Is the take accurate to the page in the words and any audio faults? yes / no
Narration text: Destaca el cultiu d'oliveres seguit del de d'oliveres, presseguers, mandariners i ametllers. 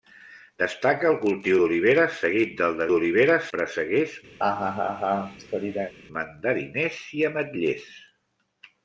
no